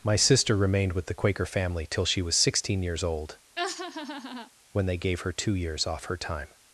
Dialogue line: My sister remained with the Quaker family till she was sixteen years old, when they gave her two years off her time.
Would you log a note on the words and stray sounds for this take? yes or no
yes